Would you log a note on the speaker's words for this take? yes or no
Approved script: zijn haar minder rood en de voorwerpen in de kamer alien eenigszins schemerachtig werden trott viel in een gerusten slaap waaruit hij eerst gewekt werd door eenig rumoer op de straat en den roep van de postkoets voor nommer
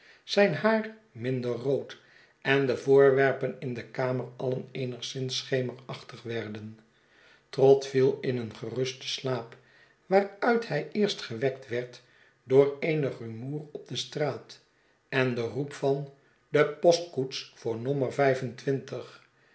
no